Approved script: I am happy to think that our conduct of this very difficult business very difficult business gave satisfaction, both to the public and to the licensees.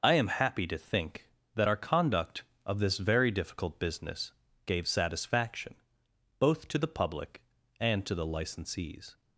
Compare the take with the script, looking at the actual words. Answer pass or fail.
fail